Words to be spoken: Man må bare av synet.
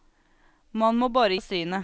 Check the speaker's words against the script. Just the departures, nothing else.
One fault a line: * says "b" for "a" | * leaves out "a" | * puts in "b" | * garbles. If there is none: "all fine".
all fine